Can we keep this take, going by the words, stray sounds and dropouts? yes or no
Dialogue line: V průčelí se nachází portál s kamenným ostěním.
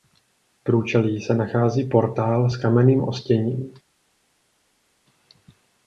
yes